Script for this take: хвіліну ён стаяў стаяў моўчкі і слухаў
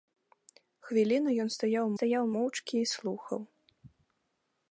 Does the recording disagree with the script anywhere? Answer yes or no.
no